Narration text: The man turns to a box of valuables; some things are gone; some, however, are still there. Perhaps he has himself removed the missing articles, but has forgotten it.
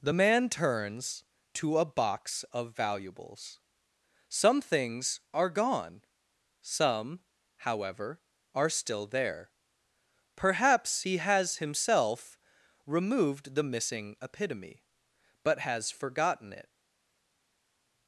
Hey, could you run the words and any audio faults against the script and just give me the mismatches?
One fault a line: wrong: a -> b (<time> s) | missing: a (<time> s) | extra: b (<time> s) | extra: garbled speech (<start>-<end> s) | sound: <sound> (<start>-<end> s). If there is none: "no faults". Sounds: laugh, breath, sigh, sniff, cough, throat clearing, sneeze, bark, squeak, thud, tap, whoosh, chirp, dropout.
wrong: articles -> epitome (14.2 s)